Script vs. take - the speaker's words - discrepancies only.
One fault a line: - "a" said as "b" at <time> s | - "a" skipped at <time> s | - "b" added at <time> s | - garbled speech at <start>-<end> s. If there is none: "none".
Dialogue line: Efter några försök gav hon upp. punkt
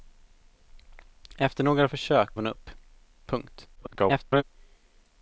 - "gav" skipped at 2.3 s
- garbled speech at 3.8-4.4 s